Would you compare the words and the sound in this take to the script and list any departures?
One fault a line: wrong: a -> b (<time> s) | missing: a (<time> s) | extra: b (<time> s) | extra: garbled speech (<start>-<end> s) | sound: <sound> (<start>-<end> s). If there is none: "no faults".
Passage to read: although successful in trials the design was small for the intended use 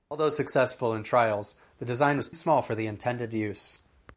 no faults